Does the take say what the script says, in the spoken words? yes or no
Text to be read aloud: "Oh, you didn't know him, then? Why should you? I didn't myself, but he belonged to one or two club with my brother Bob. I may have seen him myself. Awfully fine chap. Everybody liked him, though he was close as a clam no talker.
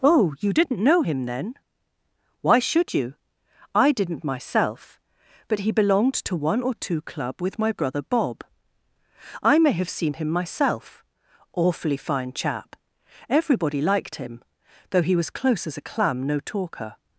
yes